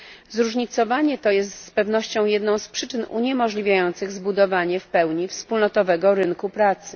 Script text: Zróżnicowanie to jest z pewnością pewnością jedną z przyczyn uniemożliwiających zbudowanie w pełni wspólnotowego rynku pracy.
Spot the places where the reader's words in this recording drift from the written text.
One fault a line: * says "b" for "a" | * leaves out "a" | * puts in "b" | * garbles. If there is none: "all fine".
* leaves out "pewnością"